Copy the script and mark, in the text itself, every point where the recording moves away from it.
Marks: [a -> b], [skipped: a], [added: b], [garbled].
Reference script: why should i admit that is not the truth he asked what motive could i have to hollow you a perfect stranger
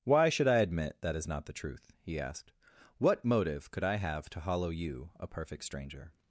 why should i admit that is not the truth he asked what motive could i have to hollow you a perfect stranger